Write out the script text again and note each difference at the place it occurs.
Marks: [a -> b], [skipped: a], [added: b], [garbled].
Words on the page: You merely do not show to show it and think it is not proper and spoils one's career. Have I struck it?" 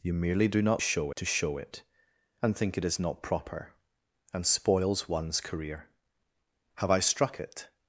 You merely do not show to show it and think it is not proper and spoils one's career. Have I struck it?"